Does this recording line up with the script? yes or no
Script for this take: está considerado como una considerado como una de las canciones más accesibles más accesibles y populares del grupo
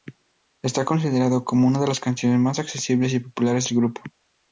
no